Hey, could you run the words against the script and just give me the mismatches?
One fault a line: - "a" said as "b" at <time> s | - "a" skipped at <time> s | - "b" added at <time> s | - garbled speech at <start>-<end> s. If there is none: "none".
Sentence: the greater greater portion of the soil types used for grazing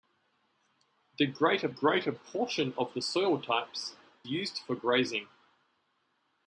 none